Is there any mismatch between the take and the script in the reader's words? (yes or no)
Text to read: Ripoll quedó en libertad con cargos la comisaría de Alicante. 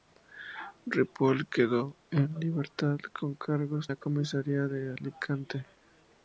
no